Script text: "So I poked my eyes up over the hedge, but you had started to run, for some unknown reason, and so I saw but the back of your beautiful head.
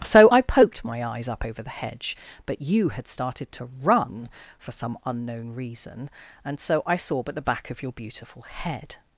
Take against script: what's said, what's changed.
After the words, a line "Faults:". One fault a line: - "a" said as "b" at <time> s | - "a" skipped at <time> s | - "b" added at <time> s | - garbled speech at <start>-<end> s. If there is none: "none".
"So I poked my eyes up over the hedge, but you had started to run, for some unknown reason, and so I saw but the back of your beautiful head.
Faults:
none